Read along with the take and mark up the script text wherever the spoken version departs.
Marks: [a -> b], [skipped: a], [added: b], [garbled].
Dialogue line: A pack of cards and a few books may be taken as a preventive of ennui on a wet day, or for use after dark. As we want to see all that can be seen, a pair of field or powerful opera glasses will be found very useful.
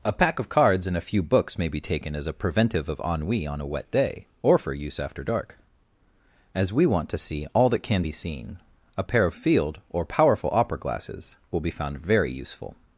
A pack of cards and a few books may be taken as a preventive of ennui on a wet day, or for use after dark. As we want to see all that can be seen, a pair of field or powerful opera glasses will be found very useful.